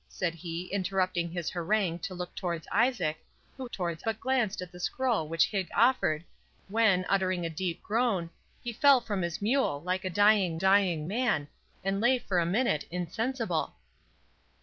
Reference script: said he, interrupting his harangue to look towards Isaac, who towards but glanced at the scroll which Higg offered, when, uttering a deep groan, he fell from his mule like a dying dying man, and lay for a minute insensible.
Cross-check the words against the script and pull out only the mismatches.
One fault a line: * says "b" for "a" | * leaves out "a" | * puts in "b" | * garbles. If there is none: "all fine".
all fine